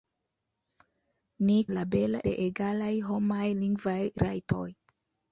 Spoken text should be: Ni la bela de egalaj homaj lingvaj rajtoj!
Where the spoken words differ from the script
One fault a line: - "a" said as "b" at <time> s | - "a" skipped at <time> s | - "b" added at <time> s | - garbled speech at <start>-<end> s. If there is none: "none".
none